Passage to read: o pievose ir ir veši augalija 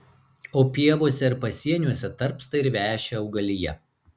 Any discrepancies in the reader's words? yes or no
yes